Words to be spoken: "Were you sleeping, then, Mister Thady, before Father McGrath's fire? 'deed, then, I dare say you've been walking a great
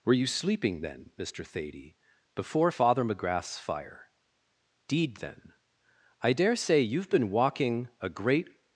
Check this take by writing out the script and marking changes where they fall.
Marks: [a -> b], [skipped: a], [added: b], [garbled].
"Were you sleeping, then, Mister Thady, before Father McGrath's fire? 'deed, then, I dare say you've been walking a great